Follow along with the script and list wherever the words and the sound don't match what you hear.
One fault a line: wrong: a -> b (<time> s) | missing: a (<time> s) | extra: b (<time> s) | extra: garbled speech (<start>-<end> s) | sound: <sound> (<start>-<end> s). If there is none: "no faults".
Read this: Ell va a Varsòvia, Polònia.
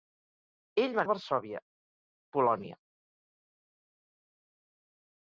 no faults